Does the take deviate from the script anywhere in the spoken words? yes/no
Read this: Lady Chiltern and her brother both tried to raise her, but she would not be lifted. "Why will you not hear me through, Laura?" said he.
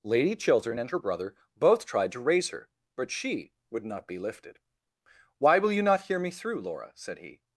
no